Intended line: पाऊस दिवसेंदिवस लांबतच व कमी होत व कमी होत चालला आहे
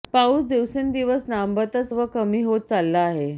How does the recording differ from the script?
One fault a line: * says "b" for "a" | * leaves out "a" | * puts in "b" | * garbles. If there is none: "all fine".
* leaves out "व कमी होत"